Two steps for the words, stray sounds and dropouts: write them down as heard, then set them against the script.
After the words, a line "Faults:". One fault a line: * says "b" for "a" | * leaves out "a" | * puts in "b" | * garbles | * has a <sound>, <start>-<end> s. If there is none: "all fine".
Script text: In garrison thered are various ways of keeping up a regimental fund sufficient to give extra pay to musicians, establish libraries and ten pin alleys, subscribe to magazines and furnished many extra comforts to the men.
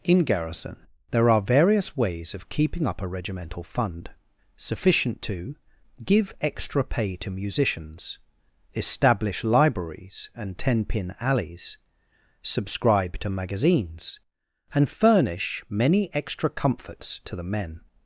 In garrison there are various ways of keeping up a regimental fund sufficient to give extra pay to musicians, establish libraries and ten pin alleys, subscribe to magazines and furnish many extra comforts to the men.
Faults:
* says "there" for "thered"
* says "furnish" for "furnished"